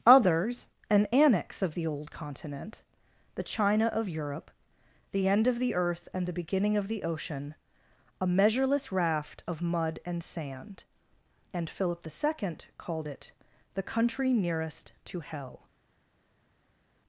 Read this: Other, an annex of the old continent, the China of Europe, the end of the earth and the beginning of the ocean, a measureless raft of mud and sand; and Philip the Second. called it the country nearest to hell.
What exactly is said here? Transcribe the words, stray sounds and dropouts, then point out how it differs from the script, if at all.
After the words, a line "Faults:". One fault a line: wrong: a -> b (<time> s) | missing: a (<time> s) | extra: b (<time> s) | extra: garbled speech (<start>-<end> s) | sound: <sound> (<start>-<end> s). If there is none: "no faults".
Others, an annex of the old continent, the China of Europe, the end of the earth and the beginning of the ocean, a measureless raft of mud and sand; and Philip the Second. called it the country nearest to hell.
Faults:
wrong: Other -> Others (0.1 s)